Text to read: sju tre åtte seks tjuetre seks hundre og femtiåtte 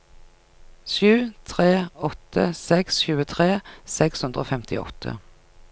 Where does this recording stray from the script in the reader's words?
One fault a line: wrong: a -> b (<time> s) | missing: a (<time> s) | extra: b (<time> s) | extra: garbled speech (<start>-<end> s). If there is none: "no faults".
no faults